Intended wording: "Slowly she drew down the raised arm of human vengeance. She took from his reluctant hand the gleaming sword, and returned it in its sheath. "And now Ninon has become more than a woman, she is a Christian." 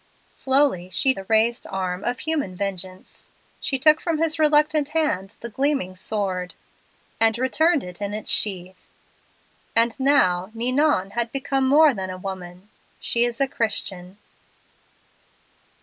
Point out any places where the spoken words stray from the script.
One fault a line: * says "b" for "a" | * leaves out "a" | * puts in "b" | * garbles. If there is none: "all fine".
* leaves out "drew down"